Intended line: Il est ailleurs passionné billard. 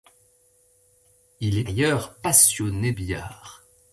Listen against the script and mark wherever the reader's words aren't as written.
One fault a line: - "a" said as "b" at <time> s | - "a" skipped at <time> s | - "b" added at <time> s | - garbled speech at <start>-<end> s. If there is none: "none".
none